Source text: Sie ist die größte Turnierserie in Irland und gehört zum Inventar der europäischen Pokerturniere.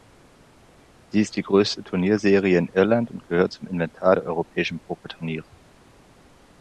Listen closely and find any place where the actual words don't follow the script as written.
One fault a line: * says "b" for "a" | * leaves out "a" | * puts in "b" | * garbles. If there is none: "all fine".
all fine